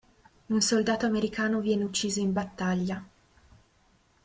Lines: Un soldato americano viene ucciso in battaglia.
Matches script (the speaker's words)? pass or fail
pass